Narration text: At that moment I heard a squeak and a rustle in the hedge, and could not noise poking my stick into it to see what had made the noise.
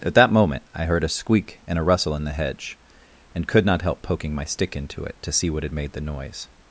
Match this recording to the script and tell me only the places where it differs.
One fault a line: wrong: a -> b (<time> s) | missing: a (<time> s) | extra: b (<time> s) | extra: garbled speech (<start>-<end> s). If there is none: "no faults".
wrong: noise -> help (3.8 s)